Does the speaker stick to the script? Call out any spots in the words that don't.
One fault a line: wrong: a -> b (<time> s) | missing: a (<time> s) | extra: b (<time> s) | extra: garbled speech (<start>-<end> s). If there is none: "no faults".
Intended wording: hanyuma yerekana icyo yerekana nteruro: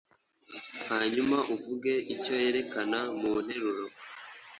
wrong: yerekana -> uvuge (1.5 s)
extra: mu (3.2 s)